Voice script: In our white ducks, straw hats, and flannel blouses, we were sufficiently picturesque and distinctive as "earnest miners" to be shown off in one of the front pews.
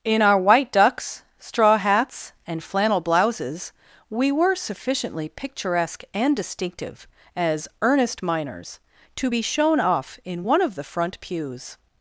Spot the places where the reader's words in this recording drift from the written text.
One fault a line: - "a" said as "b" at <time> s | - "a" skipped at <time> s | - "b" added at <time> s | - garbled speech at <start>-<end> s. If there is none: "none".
none